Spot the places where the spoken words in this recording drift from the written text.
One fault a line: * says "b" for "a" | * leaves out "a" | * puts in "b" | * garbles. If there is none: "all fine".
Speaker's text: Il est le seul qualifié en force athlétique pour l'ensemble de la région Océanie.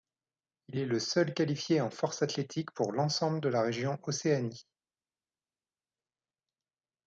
all fine